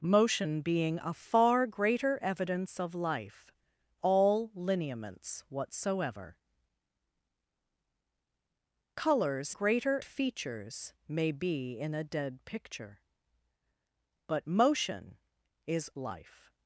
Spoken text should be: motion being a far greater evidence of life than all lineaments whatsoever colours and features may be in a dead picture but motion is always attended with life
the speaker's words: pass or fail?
fail